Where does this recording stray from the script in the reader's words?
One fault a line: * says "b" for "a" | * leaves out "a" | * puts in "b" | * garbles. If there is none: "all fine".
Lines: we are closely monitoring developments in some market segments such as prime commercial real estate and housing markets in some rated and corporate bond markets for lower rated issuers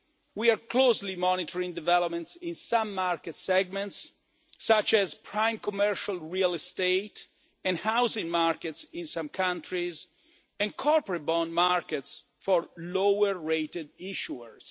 * says "countries" for "rated"